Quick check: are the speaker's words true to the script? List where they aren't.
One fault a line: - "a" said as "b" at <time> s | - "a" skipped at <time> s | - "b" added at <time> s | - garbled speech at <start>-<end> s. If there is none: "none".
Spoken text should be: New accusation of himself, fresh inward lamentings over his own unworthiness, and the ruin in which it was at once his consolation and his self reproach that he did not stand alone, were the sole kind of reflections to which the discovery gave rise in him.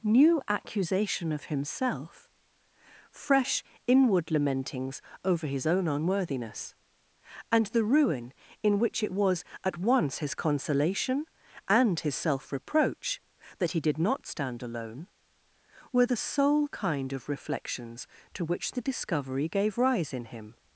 none